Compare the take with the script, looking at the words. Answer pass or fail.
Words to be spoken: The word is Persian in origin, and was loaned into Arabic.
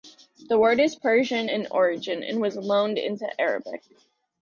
pass